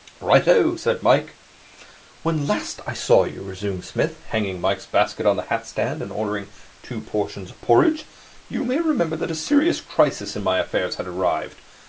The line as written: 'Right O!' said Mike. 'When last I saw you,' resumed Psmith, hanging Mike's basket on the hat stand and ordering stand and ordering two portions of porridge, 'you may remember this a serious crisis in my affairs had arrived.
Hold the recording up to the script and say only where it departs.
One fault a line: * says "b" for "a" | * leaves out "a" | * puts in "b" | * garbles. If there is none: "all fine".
* leaves out "stand and ordering"
* says "that" for "this"